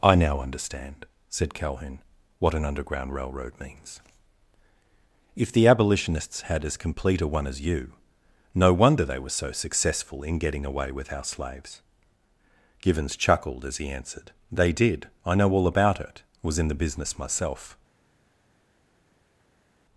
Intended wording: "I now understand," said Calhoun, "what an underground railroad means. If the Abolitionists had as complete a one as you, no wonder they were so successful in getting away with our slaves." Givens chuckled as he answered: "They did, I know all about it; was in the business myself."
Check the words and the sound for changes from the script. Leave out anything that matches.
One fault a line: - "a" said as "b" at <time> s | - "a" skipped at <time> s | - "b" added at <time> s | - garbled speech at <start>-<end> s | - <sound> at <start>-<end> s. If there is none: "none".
none